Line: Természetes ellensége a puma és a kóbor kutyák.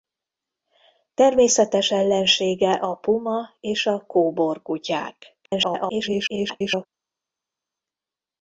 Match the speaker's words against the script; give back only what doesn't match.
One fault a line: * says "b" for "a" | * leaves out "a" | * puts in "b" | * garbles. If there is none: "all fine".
* garbles